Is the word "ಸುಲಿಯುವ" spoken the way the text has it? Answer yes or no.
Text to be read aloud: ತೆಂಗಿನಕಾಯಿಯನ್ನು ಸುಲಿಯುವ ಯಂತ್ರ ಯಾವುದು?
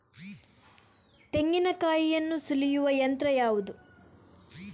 yes